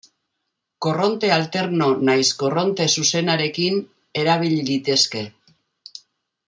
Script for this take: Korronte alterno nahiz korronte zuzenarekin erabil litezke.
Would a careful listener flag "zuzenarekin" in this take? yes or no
no